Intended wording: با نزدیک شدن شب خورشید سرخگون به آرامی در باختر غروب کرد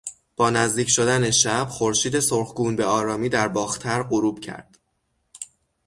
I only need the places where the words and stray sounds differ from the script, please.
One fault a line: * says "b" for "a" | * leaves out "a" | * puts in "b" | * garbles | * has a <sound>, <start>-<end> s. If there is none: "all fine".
all fine